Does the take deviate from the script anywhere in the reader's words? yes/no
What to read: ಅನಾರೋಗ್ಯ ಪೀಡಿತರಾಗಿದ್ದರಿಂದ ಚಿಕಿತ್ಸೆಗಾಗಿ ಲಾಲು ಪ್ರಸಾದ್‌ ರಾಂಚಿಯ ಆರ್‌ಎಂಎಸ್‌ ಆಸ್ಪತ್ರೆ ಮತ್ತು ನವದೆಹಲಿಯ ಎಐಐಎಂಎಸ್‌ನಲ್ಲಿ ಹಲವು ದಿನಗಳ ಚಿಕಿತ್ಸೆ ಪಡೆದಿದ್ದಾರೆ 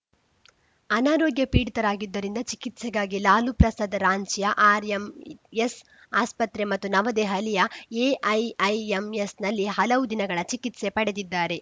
no